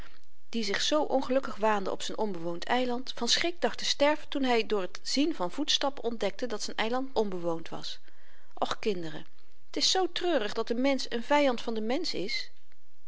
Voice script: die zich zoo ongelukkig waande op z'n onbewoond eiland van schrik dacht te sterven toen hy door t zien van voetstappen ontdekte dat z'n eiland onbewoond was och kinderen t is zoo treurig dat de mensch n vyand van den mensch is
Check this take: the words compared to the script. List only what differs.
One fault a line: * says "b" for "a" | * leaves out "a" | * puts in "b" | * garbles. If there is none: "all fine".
all fine